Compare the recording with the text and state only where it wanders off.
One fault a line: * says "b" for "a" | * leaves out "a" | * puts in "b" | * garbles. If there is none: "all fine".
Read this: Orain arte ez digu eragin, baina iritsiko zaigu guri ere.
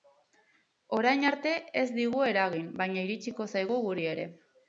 all fine